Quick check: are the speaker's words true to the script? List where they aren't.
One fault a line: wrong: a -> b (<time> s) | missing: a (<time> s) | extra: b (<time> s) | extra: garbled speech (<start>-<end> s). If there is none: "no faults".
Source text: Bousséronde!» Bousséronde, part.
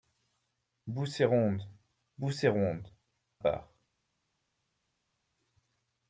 no faults